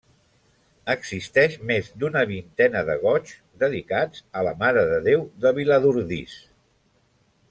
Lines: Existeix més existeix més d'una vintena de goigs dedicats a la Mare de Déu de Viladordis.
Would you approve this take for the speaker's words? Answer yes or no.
no